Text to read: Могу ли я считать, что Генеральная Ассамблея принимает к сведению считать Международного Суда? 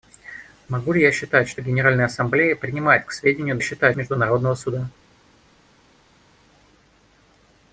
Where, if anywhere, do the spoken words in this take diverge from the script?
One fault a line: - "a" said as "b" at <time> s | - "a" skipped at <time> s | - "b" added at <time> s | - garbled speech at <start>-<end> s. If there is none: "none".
none